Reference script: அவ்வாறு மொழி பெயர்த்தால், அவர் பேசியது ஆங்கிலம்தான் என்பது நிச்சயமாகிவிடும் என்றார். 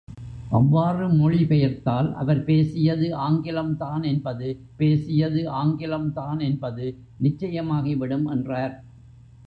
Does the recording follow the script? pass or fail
fail